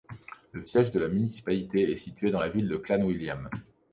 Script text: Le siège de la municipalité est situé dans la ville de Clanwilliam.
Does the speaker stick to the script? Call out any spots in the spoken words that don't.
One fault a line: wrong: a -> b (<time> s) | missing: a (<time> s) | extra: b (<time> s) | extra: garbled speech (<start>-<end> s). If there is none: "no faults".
no faults